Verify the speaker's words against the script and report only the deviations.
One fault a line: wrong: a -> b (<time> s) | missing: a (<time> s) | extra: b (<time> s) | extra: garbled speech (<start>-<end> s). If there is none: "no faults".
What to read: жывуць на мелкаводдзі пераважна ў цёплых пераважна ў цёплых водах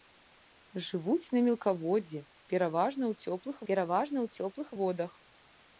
no faults